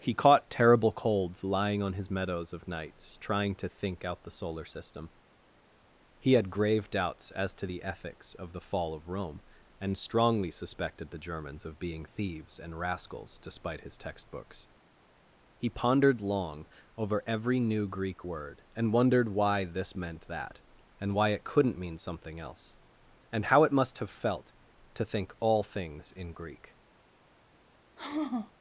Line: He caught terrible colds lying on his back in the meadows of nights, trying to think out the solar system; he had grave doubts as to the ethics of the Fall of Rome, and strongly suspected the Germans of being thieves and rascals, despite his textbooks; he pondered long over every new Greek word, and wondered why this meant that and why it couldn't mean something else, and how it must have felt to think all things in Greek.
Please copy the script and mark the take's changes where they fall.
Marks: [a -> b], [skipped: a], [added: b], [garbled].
He caught terrible colds lying on his [skipped: back in the] meadows of nights, trying to think out the solar system; he had grave doubts as to the ethics of the Fall of Rome, and strongly suspected the Germans of being thieves and rascals, despite his textbooks; he pondered long over every new Greek word, and wondered why this meant that and why it couldn't mean something else, and how it must have felt to think all things in Greek.